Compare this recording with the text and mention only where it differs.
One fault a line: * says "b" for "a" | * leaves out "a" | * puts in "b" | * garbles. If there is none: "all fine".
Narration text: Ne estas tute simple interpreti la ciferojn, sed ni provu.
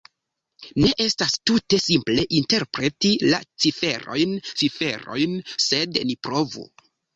* puts in "ciferojn"